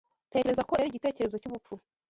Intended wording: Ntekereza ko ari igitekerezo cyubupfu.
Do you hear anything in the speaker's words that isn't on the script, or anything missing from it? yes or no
no